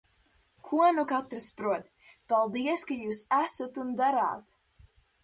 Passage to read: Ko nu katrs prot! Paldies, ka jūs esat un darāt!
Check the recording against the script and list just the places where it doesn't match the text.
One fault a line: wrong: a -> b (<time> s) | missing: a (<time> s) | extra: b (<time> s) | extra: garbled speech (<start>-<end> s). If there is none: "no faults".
no faults